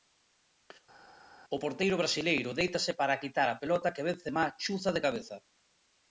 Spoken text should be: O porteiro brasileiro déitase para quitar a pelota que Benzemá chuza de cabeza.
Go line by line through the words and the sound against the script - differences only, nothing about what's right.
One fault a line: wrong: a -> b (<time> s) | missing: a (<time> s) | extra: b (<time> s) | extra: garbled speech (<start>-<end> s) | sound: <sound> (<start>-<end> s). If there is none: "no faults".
no faults